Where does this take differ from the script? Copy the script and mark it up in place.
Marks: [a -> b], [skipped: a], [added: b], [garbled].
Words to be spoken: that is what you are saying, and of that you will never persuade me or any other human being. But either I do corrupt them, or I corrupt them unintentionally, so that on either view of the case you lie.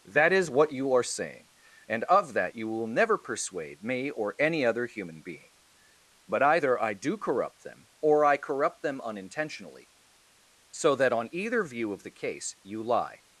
that is what you are saying, and of that you will never persuade me or any other human being. But either I do corrupt them, or I corrupt them unintentionally, so that on either view of the case you lie.